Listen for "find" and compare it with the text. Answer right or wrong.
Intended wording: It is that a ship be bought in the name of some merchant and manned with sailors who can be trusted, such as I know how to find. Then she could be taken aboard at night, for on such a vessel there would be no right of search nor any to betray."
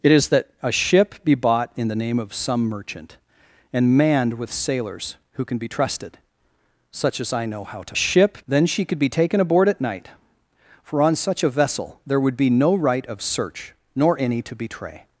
wrong